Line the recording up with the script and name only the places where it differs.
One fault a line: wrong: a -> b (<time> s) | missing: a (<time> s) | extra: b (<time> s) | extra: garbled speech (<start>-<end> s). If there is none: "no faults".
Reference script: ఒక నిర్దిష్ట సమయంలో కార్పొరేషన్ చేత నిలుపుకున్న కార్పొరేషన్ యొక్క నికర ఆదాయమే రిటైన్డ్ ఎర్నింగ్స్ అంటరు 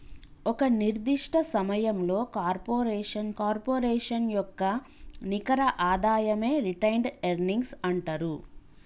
missing: చేత నిలుపుకున్న (3.3 s)